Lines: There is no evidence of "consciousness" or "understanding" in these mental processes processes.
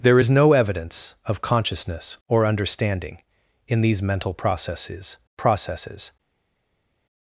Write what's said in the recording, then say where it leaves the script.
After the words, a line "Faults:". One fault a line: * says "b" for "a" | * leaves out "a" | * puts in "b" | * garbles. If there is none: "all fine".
There is no evidence of "consciousness" or "understanding" in these mental processes processes.
Faults:
all fine